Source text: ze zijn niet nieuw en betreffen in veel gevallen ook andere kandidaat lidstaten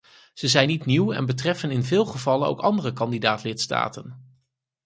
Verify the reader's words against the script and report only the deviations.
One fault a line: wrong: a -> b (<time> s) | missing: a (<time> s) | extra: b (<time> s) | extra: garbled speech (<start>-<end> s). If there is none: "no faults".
no faults